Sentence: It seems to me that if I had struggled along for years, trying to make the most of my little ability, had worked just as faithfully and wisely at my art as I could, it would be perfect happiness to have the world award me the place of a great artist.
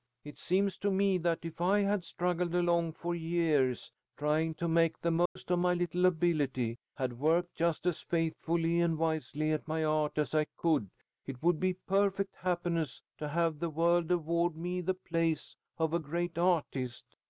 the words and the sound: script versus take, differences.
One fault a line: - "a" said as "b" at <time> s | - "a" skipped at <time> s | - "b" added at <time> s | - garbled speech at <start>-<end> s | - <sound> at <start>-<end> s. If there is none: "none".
- dropout at 5.3-5.4 s